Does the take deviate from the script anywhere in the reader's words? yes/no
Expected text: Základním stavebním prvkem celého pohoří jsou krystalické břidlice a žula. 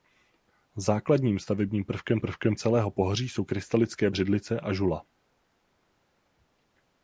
yes